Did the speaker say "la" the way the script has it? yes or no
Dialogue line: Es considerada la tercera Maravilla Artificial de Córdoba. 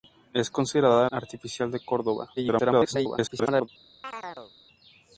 no